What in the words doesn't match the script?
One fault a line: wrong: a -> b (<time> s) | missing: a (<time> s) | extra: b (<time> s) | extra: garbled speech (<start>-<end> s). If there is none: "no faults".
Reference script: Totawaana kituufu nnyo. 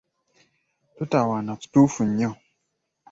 no faults